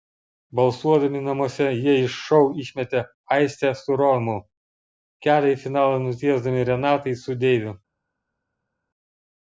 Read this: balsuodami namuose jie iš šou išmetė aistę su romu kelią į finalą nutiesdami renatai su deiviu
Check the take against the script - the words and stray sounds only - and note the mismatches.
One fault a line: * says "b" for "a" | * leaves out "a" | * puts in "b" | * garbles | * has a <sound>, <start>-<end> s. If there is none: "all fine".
all fine